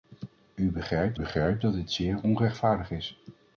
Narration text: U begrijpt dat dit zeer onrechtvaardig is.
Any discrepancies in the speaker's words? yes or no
yes